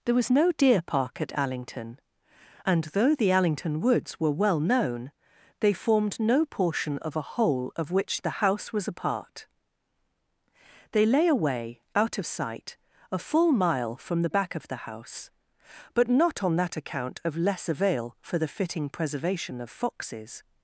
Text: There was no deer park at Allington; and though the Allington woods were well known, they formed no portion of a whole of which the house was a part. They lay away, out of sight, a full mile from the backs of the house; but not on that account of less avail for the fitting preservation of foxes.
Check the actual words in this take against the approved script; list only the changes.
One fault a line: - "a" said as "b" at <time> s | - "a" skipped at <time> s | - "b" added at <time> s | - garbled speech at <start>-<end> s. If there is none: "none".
- "backs" said as "back" at 14.3 s